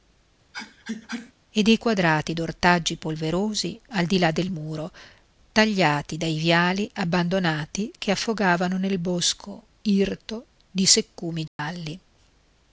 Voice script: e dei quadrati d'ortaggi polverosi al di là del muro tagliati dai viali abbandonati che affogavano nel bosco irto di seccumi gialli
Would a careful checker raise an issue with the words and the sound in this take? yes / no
yes